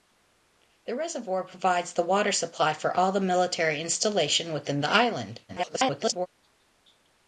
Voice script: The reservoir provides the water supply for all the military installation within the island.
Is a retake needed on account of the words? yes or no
yes